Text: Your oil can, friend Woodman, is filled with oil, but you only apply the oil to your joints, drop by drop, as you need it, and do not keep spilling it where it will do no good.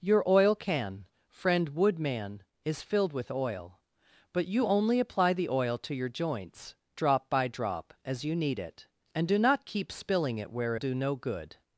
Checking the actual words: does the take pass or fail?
fail